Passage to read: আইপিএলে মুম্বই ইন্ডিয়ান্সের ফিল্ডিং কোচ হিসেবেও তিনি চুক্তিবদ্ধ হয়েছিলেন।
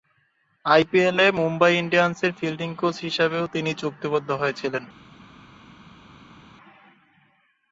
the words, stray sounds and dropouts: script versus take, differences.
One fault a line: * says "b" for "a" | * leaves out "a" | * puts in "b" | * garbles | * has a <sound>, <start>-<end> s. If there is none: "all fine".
all fine